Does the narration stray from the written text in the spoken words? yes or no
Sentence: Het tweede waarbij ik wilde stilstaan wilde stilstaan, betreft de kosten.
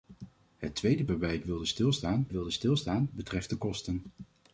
no